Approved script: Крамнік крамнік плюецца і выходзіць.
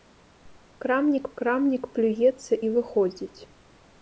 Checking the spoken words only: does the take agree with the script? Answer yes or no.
yes